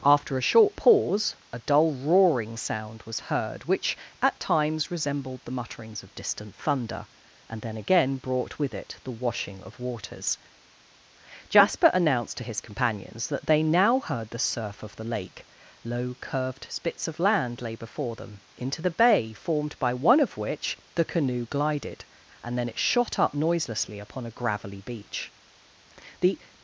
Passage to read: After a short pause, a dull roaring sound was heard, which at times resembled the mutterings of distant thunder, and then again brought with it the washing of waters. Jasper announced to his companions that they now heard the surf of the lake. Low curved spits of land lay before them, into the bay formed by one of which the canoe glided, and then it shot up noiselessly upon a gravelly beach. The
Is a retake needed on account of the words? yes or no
no